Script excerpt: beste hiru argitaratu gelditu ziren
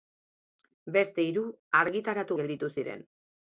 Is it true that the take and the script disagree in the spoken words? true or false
false